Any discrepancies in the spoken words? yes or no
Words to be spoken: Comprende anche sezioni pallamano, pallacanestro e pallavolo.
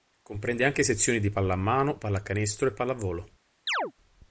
yes